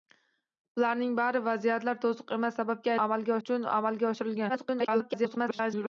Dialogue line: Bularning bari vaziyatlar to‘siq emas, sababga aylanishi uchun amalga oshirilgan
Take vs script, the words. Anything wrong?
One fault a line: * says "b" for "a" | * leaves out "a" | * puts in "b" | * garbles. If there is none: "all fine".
* says "amalga" for "aylanishi"
* garbles